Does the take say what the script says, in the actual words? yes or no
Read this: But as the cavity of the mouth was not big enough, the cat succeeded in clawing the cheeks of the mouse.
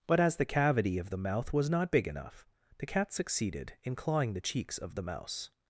yes